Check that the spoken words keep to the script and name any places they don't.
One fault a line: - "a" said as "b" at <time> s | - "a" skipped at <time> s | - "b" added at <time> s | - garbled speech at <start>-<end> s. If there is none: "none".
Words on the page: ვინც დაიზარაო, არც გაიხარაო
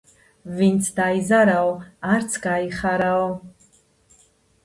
none